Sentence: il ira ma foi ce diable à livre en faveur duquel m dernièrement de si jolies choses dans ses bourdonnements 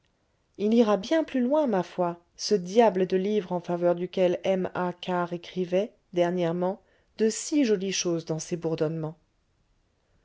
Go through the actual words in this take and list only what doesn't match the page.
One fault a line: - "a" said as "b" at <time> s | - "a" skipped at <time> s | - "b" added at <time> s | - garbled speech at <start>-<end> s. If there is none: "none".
- "bien plus loin" added at 1.0 s
- "à" said as "de" at 3.0 s
- "a karr écrivait" added at 4.7 s